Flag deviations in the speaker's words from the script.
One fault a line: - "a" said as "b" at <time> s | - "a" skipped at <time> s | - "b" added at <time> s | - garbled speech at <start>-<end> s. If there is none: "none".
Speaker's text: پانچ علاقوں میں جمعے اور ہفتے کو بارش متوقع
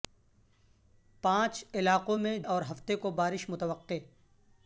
- "جمعے" skipped at 2.4 s